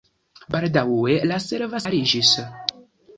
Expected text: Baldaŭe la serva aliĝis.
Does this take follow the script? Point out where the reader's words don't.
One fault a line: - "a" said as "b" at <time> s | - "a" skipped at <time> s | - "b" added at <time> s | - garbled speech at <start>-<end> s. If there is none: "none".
none